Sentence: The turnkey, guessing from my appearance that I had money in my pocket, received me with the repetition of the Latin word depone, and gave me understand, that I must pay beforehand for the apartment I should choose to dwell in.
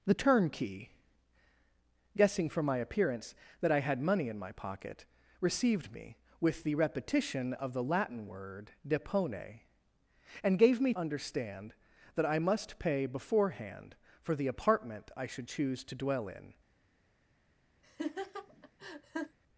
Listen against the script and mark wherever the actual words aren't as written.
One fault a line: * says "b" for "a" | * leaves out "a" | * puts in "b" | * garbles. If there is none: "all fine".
all fine